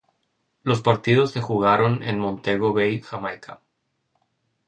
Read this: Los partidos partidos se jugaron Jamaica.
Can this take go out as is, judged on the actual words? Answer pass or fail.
fail